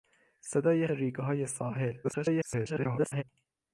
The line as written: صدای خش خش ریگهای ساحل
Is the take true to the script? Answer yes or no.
no